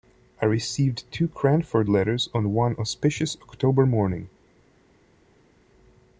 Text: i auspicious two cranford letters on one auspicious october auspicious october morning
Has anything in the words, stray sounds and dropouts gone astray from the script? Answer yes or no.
yes